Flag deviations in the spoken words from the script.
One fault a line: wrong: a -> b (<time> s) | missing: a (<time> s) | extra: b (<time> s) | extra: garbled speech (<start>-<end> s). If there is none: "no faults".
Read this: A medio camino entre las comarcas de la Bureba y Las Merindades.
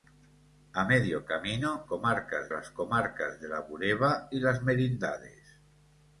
wrong: entre -> comarcas (1.8 s)